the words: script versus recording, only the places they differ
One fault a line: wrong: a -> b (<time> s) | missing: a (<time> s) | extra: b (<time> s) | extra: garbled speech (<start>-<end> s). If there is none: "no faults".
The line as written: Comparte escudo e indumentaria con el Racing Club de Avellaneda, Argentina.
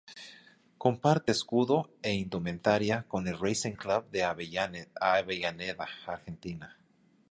no faults